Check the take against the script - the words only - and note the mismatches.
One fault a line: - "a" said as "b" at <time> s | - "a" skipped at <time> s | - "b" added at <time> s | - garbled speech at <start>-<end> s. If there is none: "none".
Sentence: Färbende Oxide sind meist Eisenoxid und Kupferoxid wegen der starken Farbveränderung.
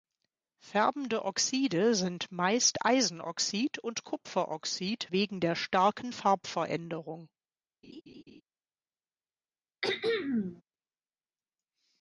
none